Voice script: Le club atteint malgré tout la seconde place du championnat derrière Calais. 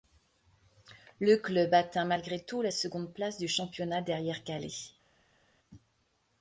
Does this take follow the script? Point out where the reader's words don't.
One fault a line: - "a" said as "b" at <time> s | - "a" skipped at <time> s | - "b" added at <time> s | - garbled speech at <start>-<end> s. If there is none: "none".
none